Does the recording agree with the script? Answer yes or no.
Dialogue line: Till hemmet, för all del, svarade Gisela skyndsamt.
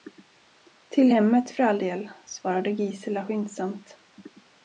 yes